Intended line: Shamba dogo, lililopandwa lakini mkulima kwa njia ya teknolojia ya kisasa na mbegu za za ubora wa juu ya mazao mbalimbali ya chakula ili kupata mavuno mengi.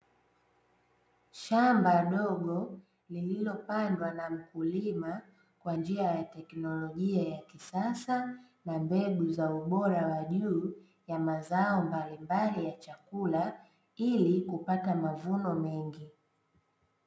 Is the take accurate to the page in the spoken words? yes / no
no